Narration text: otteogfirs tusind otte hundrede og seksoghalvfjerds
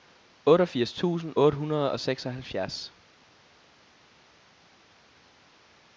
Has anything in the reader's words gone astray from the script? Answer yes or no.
no